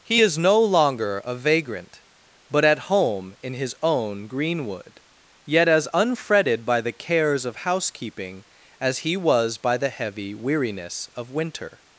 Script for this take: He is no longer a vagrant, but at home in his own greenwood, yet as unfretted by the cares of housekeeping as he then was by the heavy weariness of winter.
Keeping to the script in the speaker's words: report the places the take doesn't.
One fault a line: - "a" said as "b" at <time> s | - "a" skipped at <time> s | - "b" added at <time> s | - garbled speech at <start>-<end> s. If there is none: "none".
- "then" skipped at 9.2 s